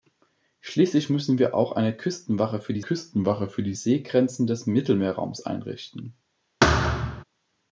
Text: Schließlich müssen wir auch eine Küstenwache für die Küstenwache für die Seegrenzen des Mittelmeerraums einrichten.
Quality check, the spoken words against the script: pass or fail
pass